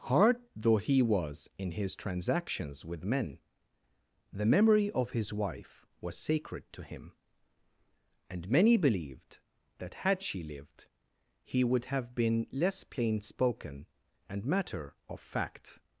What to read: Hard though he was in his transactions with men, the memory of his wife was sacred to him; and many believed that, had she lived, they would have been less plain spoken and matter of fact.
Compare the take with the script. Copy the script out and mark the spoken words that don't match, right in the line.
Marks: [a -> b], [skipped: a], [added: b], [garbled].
Hard though he was in his transactions with men, the memory of his wife was sacred to him; and many believed that, had she lived, [they -> he] would have been less plain spoken and matter of fact.